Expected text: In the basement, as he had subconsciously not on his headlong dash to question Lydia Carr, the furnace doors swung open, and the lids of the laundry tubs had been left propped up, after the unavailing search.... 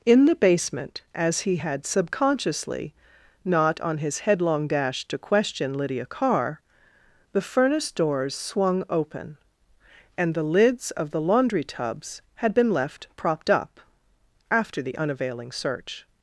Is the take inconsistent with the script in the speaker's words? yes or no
no